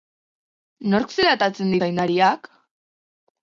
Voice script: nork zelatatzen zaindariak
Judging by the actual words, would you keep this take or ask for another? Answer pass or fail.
pass